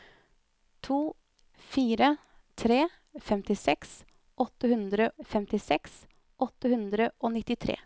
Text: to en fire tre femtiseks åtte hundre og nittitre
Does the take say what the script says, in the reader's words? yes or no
no